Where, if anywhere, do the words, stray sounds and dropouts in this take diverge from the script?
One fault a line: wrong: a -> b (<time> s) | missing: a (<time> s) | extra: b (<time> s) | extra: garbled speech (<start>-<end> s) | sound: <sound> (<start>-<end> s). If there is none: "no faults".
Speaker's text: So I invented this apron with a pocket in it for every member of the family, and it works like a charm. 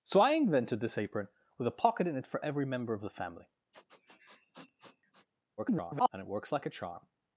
sound: sniff (3.7-5.3 s)
extra: garbled speech (5.6-6.1 s)